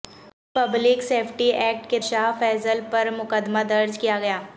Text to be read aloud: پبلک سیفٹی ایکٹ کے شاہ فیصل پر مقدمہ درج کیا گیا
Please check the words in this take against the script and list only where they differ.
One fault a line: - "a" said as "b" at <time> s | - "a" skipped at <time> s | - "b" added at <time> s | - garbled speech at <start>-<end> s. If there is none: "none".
none